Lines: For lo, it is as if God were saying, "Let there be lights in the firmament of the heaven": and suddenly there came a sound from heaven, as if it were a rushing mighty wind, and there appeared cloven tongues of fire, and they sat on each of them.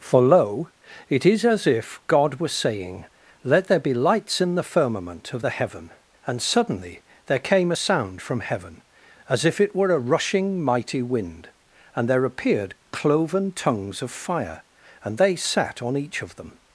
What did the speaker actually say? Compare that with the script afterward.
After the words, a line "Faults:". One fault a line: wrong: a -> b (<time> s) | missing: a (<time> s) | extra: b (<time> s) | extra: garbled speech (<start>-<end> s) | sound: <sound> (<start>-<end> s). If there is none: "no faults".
For lo, it is as if God were saying, "Let there be lights in the firmament of the heaven": and suddenly there came a sound from heaven, as if it were a rushing mighty wind, and there appeared cloven tongues of fire, and they sat on each of them.
Faults:
no faults